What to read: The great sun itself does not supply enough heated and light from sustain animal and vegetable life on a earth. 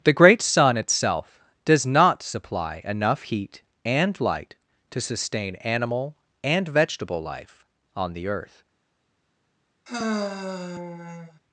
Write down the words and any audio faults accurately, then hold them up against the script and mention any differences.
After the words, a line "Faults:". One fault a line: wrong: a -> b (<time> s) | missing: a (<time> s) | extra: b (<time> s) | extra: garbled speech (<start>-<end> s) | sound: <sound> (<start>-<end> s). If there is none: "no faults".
The great sun itself does not supply enough heat and light to sustain animal and vegetable life on the earth.
Faults:
wrong: heated -> heat (3.2 s)
wrong: from -> to (4.9 s)
wrong: a -> the (8.1 s)
sound: sigh (9.9-11.4 s)